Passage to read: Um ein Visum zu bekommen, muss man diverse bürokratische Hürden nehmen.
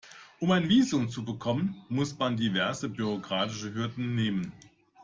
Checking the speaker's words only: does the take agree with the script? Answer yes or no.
yes